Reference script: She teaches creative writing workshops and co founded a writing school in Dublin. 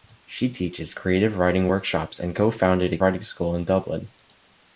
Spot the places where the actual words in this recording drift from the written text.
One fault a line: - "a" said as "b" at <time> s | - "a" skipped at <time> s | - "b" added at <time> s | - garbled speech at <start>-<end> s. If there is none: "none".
none